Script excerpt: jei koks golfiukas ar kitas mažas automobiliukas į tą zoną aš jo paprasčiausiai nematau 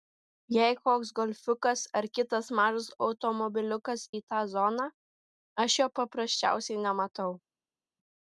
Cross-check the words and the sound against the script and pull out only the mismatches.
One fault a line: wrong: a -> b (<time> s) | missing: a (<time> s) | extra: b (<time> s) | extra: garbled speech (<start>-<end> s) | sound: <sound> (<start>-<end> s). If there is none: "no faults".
no faults